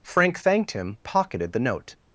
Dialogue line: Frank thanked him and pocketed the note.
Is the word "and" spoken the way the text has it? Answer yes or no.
no